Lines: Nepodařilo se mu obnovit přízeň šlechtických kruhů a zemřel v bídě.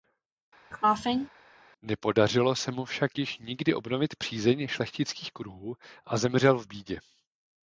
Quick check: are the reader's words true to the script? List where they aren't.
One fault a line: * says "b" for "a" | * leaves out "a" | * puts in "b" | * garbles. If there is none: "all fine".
* puts in "však již nikdy"